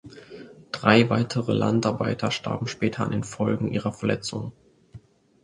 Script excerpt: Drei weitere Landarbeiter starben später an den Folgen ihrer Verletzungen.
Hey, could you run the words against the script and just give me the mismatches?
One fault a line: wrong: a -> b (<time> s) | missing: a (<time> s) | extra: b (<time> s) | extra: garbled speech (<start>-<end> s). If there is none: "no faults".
no faults